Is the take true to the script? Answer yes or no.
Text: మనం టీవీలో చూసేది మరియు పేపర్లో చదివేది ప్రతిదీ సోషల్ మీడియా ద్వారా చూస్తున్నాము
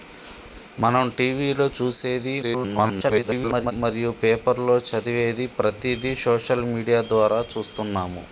no